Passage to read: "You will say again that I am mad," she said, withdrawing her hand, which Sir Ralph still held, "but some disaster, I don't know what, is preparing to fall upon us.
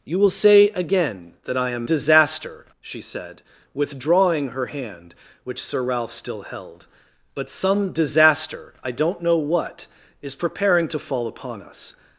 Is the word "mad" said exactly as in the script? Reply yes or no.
no